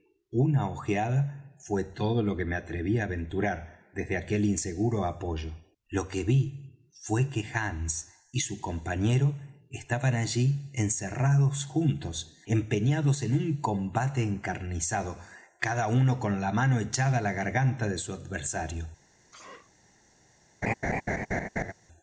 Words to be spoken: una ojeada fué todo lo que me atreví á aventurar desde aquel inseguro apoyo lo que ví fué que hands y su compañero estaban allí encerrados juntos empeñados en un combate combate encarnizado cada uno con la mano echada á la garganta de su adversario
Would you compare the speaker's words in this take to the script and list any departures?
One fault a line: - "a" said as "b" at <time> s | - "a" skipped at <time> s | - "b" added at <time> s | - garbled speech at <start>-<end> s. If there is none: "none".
- "combate" skipped at 14.2 s